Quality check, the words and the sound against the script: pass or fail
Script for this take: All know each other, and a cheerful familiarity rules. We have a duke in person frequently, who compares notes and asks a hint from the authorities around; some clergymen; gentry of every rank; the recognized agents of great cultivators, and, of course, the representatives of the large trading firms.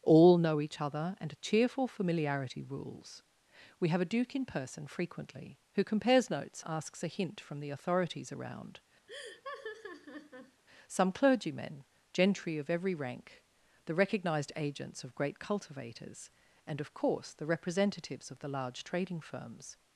fail